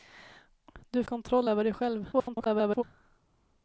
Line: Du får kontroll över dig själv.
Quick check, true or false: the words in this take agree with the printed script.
false